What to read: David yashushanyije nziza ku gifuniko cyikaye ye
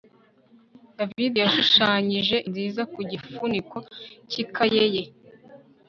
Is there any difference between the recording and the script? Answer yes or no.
no